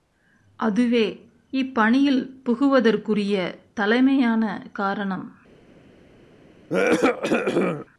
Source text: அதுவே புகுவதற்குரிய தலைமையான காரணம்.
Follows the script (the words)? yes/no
no